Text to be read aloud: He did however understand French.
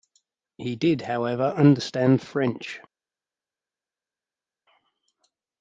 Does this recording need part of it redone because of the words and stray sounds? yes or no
no